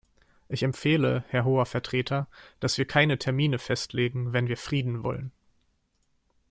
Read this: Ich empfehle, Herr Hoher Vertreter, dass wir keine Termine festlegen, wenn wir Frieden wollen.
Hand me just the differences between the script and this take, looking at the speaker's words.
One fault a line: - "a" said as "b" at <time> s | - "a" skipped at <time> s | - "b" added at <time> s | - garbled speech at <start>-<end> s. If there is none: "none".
none